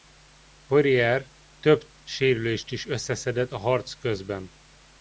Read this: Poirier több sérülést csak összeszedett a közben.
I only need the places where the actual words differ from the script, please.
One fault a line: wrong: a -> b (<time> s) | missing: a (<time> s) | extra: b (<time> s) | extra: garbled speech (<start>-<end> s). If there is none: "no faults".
wrong: csak -> is (2.7 s)
extra: harc (3.6 s)